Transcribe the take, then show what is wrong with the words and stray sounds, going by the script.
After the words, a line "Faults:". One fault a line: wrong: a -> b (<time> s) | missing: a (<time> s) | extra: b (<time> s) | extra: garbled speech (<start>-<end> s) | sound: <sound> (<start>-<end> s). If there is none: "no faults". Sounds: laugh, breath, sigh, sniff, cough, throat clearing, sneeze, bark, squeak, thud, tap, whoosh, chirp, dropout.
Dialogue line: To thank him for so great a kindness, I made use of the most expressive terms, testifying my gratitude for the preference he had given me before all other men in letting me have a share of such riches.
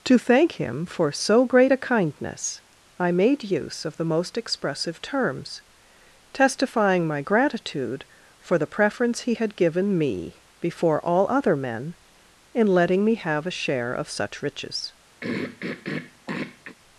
To thank him for so great a kindness, I made use of the most expressive terms, testifying my gratitude for the preference he had given me before all other men in letting me have a share of such riches.
Faults:
sound: throat clearing (15.2-16.8 s)